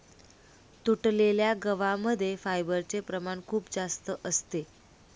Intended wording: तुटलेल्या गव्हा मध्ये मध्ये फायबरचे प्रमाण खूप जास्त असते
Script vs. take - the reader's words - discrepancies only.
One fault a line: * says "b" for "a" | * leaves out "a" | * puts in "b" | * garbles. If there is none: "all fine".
* leaves out "मध्ये"